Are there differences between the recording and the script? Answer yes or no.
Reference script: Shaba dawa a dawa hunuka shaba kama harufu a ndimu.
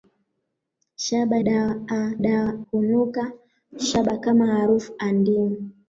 no